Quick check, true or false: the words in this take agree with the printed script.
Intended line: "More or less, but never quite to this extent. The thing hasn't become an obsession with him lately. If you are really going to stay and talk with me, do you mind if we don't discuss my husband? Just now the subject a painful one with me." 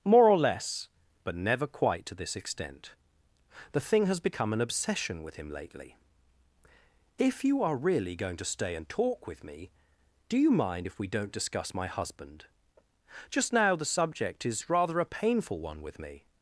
false